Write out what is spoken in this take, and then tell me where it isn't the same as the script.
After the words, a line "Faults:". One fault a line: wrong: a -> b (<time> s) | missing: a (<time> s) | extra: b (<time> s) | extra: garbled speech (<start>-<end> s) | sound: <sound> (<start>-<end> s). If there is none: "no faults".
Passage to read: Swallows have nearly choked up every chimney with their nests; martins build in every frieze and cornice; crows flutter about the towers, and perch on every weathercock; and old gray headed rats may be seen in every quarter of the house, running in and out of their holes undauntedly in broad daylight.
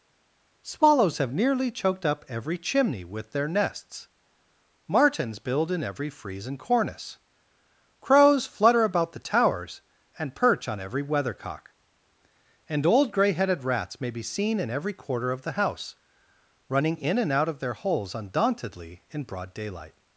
Swallows have nearly choked up every chimney with their nests; martins build in every frieze and cornice; crows flutter about the towers, and perch on every weathercock; and old gray headed rats may be seen in every quarter of the house, running in and out of their holes undauntedly in broad daylight.
Faults:
no faults